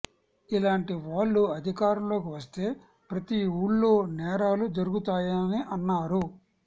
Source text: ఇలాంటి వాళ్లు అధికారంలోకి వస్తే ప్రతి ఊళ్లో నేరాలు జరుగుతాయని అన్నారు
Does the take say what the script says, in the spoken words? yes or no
yes